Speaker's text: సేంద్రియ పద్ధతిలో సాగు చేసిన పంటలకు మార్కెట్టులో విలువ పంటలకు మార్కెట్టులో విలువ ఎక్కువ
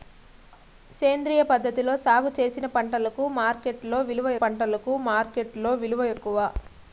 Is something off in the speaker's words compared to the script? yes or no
no